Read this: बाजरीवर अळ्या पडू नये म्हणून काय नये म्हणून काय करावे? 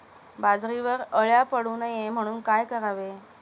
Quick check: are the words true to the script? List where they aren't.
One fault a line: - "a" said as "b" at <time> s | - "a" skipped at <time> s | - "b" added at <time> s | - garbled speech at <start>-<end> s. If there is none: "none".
- "नये म्हणून काय" skipped at 2.6 s